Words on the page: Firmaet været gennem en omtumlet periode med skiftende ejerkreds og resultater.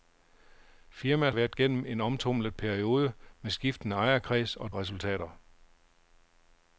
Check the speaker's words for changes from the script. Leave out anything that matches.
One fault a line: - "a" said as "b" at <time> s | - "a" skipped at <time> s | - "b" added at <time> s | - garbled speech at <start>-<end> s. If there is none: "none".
none